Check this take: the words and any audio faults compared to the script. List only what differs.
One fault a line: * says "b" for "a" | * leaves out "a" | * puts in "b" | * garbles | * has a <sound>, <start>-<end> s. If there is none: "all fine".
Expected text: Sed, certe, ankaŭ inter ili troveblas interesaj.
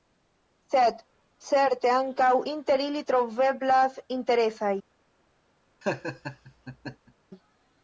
* has a laugh, 5.8-7.1 s